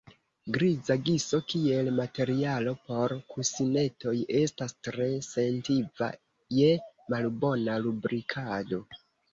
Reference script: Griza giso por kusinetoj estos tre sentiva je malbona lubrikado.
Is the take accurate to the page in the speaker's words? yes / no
no